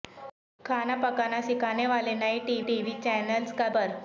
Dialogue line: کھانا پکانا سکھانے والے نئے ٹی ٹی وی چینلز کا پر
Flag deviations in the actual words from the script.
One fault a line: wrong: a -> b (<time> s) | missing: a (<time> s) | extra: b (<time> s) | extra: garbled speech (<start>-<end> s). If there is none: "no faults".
no faults